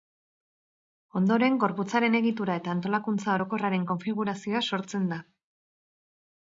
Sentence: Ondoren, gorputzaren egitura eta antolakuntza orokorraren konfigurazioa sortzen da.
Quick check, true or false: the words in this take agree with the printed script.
true